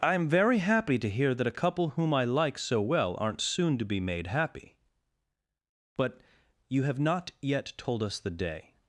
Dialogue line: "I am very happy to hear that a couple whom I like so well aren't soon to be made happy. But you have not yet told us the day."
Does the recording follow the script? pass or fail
pass